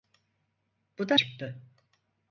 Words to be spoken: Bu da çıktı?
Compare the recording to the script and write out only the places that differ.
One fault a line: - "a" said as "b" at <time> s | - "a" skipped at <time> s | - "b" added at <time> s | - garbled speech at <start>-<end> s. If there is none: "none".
none